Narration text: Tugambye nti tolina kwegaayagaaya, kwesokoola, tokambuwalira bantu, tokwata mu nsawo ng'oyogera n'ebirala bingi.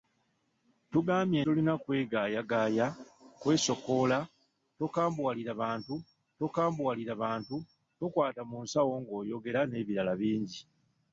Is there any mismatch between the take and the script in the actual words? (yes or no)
yes